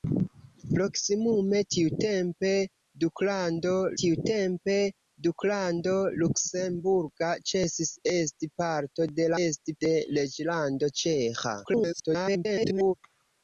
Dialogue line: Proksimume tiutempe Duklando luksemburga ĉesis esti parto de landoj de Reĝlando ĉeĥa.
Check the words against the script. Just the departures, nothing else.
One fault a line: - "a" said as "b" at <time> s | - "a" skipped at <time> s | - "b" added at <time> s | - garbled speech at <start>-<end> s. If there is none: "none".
- "tiutempe Duklando" added at 4.0 s
- "landoj" said as "esti" at 9.4 s
- garbled speech at 11.6-12.9 s